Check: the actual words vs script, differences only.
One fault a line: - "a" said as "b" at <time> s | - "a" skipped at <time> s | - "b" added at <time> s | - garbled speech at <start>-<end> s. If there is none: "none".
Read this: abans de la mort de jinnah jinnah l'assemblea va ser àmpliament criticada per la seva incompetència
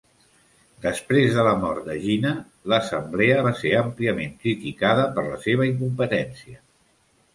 - "abans" said as "després" at 0.8 s
- "jinnah" skipped at 2.3 s